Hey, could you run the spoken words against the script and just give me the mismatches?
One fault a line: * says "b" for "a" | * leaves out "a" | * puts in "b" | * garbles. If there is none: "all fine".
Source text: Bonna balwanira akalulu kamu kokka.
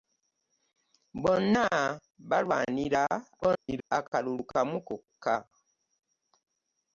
* garbles